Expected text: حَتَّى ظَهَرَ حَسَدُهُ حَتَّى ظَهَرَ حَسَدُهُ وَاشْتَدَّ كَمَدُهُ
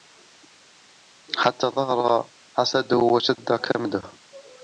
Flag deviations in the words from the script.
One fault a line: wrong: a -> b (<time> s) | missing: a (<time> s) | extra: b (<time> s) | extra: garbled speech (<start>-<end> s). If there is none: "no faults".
missing: حَتَّى ظَهَرَ حَسَدُهُ (3.0 s)